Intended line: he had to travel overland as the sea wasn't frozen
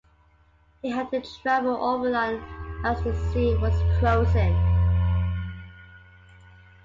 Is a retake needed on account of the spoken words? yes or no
yes